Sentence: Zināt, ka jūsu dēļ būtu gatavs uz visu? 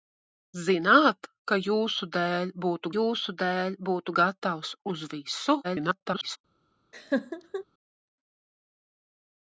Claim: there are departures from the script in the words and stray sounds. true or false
true